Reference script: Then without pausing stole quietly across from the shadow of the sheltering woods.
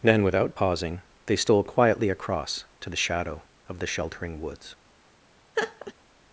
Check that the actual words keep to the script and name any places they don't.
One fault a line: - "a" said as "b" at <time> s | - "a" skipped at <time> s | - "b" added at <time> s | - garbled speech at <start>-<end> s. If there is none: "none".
- "they" added at 1.3 s
- "from" said as "to" at 2.8 s